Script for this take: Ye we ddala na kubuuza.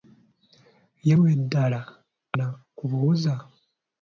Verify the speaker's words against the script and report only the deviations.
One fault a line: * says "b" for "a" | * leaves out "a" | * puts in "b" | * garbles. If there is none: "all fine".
all fine